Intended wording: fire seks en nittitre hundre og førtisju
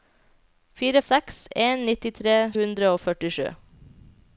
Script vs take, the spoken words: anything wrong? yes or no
no